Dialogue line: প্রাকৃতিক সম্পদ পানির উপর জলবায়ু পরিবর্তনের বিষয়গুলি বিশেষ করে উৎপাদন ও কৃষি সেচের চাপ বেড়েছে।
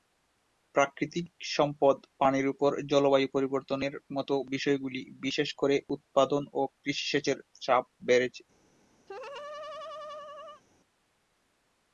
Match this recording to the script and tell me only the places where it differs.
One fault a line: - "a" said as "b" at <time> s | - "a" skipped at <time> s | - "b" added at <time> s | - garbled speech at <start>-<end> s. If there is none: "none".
- "মতো" added at 4.2 s